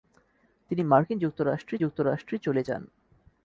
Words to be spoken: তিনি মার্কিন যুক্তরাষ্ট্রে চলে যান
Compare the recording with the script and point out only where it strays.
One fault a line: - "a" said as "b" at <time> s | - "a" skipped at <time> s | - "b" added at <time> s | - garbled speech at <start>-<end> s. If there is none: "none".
- "যুক্তরাষ্ট্রে" added at 1.8 s